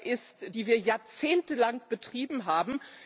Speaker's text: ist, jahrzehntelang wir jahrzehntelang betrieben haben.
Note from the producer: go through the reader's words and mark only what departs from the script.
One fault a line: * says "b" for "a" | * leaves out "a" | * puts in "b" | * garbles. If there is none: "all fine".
* says "die" for "jahrzehntelang"